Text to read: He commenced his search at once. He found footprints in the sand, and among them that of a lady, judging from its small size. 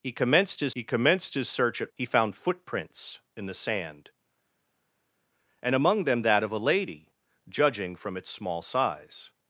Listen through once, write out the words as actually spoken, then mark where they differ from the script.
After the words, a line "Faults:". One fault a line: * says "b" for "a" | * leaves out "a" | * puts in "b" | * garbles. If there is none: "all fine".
He commenced his he commenced his search at. He found footprints in the sand, and among them that of a lady, judging from its small size.
Faults:
* puts in "he commenced his"
* leaves out "once"